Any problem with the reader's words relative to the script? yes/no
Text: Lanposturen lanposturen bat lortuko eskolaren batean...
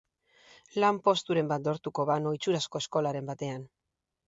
yes